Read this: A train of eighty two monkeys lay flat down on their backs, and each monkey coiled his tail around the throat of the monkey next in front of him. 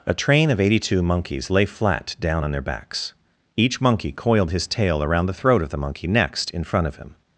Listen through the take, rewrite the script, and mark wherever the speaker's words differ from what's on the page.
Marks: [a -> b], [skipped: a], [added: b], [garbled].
A train of eighty two monkeys lay flat down on their backs, [skipped: and] each monkey coiled his tail around the throat of the monkey next in front of him.